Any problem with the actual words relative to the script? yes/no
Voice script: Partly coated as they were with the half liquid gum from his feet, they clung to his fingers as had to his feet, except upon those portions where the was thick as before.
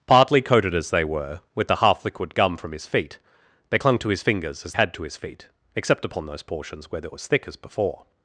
no